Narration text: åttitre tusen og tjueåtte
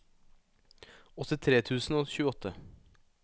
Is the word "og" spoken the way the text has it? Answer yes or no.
yes